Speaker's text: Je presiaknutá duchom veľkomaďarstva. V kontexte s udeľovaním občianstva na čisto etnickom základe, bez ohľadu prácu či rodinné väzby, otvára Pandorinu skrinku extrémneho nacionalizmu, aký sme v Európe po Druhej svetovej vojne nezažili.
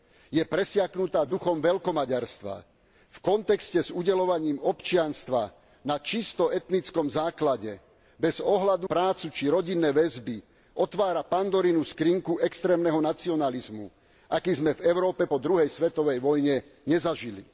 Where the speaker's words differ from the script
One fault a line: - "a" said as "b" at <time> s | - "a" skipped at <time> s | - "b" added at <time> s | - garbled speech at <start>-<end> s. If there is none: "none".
none